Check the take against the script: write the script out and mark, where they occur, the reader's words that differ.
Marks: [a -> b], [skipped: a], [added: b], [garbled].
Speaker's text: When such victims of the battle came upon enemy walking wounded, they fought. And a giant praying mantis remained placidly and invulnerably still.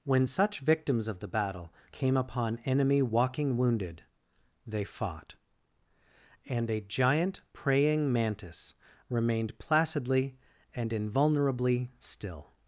When such victims of the battle came upon enemy walking wounded, they fought. And a giant praying mantis remained placidly and invulnerably still.